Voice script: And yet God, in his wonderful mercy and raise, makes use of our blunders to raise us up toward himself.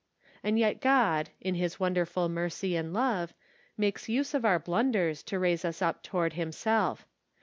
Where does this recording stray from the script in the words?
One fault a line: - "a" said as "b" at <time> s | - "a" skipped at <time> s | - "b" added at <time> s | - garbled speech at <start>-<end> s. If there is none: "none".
- "raise" said as "love" at 2.9 s